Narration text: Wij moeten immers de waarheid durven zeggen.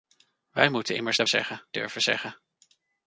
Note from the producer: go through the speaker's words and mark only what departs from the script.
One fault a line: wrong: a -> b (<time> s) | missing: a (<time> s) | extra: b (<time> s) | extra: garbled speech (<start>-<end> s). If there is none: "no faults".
wrong: waarheid -> zeggen (1.3 s)